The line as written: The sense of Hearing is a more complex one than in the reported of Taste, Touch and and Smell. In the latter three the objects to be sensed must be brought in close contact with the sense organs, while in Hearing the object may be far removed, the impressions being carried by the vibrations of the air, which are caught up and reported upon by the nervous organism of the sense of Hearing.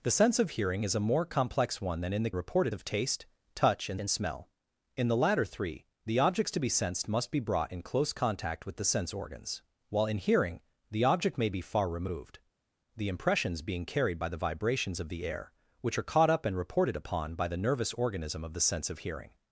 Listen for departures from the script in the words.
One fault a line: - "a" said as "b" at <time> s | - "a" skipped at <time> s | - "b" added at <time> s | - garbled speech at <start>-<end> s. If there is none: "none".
none